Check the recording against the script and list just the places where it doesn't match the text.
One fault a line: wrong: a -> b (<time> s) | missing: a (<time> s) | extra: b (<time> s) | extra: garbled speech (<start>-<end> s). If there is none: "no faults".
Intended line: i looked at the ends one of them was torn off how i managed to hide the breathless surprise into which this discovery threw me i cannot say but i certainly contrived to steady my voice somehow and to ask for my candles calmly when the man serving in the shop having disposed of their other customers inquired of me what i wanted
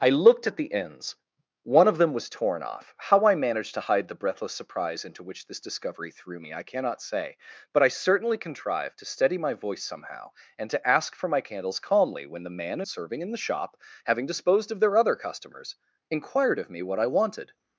no faults